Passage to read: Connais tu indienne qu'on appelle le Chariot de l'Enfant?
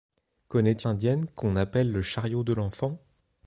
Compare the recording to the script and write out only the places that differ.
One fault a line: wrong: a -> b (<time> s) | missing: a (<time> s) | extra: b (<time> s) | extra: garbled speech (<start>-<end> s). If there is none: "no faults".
no faults